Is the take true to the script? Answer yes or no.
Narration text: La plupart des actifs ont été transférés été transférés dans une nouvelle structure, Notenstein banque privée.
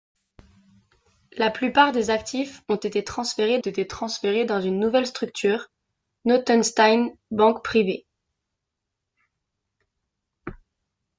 yes